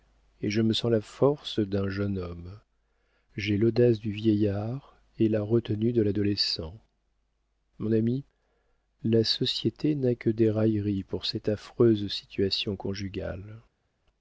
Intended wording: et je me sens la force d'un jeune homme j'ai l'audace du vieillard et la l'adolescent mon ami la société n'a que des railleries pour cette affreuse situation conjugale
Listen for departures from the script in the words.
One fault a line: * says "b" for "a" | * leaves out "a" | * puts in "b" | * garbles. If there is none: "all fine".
* puts in "retenue de"